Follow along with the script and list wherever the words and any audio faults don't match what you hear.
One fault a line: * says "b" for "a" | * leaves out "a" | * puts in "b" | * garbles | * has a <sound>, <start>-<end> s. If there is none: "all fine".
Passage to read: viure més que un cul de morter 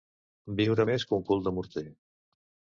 all fine